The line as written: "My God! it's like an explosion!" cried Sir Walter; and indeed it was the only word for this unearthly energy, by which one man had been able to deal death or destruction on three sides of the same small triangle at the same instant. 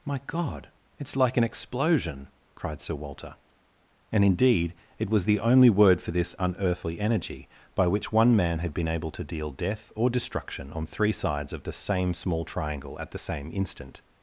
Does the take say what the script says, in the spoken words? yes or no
yes